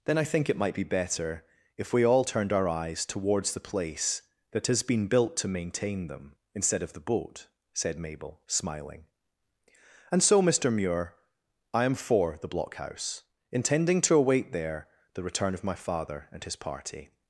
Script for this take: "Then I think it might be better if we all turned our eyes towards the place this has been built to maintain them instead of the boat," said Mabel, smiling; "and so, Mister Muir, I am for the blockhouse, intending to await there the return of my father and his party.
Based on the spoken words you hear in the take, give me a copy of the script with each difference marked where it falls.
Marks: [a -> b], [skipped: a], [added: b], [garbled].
"Then I think it might be better if we all turned our eyes towards the place [this -> that] has been built to maintain them instead of the boat," said Mabel, smiling; "and so, Mister Muir, I am for the blockhouse, intending to await there the return of my father and his party.